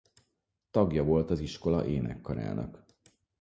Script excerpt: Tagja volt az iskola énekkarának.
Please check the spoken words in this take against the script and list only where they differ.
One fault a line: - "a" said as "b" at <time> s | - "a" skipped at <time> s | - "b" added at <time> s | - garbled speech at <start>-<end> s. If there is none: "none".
none